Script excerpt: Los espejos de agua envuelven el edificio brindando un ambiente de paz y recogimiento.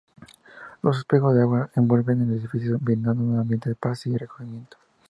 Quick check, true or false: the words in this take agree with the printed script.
true